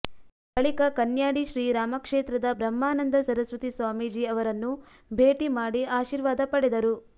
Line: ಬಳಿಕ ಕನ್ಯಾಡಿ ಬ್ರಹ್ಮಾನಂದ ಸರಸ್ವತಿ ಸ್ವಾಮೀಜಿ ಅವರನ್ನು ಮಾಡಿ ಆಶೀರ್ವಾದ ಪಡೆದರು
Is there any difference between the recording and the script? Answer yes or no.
yes